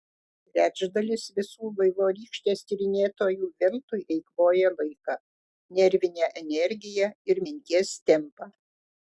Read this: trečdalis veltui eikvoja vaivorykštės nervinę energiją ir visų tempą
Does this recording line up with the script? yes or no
no